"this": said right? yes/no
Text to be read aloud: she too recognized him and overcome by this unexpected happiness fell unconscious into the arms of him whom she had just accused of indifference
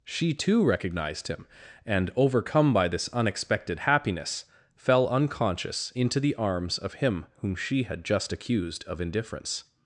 yes